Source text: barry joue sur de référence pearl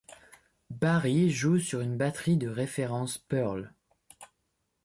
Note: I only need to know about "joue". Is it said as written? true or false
true